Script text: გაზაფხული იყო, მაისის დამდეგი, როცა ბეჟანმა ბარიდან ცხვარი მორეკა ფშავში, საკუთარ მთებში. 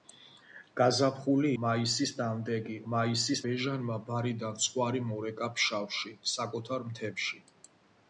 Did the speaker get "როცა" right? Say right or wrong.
wrong